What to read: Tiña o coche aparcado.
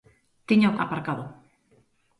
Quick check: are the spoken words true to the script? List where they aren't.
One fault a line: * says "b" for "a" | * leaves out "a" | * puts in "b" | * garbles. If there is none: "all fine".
* leaves out "coche"